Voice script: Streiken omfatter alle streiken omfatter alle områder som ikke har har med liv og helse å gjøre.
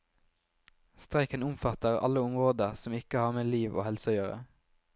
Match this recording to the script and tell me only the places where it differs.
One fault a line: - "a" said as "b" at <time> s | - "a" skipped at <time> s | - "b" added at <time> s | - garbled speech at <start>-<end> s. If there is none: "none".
- "streiken omfatter alle" skipped at 2.2 s
- "har" skipped at 3.3 s